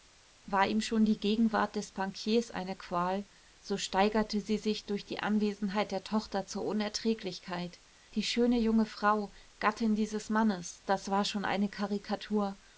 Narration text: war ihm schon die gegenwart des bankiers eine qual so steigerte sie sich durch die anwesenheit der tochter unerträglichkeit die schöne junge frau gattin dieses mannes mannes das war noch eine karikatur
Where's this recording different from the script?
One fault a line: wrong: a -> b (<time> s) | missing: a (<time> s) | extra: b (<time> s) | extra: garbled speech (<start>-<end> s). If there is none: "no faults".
extra: zur (6.5 s)
missing: mannes (10.8 s)
wrong: noch -> schon (11.2 s)